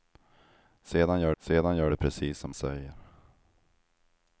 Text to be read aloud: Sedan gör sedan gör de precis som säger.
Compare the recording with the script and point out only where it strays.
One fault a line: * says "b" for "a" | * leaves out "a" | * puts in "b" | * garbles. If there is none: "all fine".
all fine